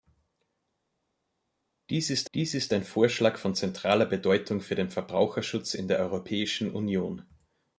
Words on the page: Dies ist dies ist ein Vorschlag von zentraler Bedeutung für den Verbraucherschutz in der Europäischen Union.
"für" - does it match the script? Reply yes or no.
yes